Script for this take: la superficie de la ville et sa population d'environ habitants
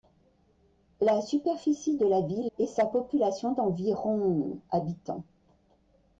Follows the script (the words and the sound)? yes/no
yes